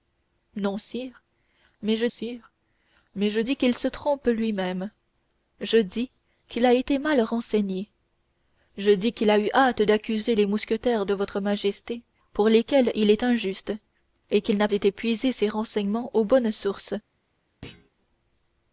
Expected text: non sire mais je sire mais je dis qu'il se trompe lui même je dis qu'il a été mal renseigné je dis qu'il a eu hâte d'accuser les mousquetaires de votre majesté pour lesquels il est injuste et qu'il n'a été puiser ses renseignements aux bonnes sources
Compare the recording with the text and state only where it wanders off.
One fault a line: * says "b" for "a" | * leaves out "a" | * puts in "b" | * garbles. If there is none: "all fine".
all fine